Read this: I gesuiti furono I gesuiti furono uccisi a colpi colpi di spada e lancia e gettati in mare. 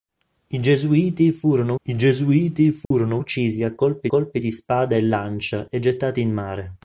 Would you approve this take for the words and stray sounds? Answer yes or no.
no